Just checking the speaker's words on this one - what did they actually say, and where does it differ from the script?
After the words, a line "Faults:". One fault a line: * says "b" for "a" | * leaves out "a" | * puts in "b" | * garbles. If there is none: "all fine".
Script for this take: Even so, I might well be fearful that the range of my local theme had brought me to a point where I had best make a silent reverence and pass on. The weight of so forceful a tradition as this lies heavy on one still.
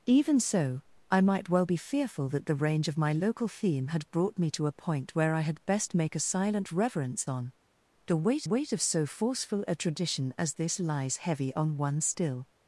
Even so, I might well be fearful that the range of my local theme had brought me to a point where I had best make a silent reverence on. The weight weight of so forceful a tradition as this lies heavy on one still.
Faults:
* leaves out "and pass"
* puts in "weight"